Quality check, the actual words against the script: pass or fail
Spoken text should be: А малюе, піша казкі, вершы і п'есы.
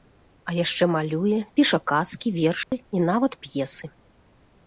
fail